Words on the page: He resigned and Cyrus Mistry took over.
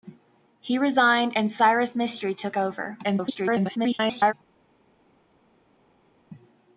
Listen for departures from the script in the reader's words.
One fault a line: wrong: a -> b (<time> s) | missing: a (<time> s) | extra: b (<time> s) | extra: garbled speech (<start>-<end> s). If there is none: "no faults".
extra: garbled speech (3.0-4.3 s)